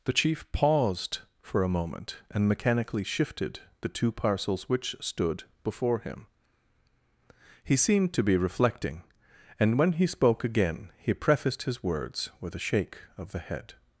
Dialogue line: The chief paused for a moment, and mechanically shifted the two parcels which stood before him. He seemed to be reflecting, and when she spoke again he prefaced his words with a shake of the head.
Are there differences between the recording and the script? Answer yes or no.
yes